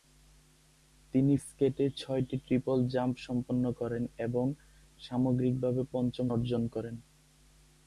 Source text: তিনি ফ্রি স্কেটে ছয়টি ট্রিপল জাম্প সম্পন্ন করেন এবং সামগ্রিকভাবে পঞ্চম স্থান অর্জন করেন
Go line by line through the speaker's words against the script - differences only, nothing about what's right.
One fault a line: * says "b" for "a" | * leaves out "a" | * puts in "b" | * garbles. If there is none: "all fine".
* leaves out "ফ্রি"
* leaves out "স্থান"